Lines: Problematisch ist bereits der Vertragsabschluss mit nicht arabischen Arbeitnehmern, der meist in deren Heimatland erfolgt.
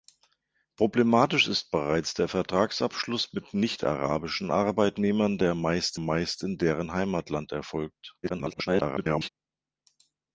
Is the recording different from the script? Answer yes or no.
yes